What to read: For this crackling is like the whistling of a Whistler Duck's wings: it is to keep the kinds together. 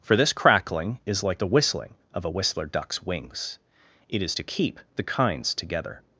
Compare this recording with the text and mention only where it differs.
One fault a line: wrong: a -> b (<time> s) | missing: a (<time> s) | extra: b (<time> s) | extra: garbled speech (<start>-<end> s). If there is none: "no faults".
no faults